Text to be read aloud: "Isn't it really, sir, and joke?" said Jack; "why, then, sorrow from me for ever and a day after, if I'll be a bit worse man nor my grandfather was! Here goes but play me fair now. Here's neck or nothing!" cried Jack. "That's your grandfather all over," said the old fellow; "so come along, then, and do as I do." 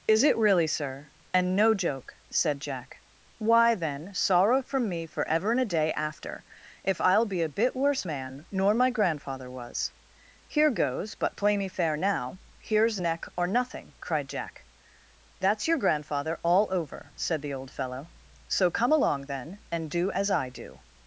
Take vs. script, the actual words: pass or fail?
fail